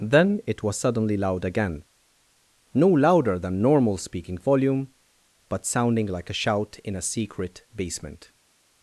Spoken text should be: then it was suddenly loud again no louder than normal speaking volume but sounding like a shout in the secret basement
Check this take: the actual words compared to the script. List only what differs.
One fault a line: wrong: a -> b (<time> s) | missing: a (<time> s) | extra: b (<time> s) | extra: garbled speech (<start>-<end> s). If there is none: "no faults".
wrong: the -> a (7.0 s)